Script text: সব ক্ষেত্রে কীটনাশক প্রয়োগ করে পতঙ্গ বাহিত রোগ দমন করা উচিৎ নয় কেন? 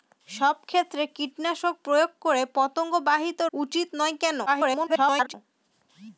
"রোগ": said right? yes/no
no